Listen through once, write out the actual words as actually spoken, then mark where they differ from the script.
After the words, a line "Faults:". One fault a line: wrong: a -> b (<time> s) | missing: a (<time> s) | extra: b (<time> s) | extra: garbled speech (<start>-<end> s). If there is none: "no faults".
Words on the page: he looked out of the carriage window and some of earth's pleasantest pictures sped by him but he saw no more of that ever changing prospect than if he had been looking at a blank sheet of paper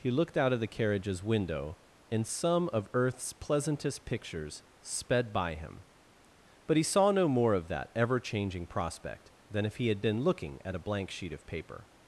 he looked out of the carriages window and some of earth's pleasantest pictures sped by him but he saw no more of that ever changing prospect than if he had been looking at a blank sheet of paper
Faults:
wrong: carriage -> carriages (0.7 s)